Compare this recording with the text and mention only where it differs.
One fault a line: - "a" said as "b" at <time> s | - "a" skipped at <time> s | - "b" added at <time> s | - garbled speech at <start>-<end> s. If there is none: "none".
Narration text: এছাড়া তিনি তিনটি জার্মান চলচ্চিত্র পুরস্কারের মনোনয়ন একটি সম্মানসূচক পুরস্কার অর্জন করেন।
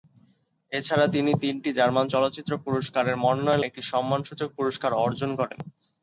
none